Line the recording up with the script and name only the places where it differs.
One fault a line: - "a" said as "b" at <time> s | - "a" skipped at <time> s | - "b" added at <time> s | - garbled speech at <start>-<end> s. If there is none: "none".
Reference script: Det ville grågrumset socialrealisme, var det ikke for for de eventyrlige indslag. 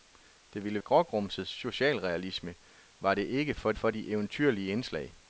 none